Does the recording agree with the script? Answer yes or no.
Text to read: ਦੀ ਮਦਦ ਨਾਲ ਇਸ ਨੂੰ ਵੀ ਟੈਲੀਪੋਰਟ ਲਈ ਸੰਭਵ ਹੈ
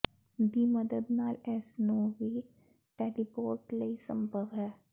yes